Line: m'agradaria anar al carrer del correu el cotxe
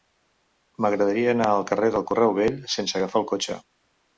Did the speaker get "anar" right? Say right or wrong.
right